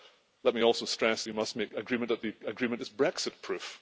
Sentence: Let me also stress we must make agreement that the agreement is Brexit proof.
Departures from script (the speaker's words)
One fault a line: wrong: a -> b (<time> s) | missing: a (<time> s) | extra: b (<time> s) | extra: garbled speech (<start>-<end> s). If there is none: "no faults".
no faults